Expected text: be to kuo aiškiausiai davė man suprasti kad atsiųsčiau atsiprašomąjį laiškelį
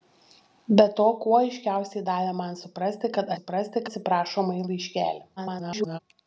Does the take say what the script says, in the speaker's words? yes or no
no